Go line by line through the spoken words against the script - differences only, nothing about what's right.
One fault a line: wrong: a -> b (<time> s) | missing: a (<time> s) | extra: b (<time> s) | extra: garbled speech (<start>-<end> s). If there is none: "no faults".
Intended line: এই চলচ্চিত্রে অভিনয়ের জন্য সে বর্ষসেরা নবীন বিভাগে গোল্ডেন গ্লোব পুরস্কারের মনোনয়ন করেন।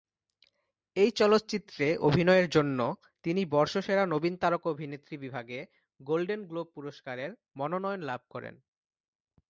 wrong: সে -> তিনি (3.2 s)
extra: তারকা অভিনেত্রী (4.4 s)
extra: লাভ (8.0 s)